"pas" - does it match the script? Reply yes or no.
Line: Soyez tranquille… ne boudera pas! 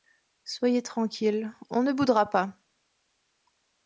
yes